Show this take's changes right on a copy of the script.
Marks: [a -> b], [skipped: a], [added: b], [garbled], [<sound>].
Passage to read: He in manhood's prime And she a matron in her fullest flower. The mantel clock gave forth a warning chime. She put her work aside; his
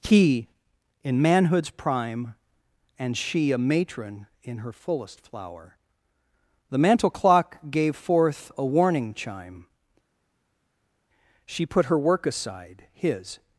He in manhood's prime And she a matron in her fullest flower. The mantel clock gave forth a warning chime. She put her work aside; his